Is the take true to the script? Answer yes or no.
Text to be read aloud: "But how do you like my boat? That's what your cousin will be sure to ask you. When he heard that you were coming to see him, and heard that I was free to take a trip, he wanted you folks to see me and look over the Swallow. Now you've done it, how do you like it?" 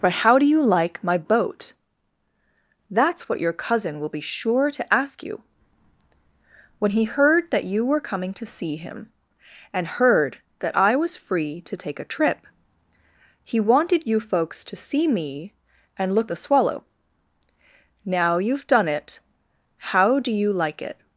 no